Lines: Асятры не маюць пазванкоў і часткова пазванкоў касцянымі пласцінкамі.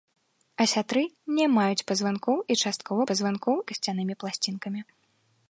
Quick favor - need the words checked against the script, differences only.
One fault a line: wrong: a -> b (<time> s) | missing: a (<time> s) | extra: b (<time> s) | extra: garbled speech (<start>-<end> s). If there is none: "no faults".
no faults